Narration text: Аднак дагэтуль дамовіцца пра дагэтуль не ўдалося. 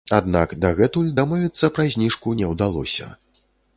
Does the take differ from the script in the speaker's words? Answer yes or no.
yes